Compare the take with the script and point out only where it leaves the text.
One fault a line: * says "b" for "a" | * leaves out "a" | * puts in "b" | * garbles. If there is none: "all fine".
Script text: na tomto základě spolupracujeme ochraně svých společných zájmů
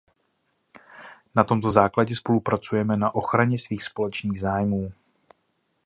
* puts in "na"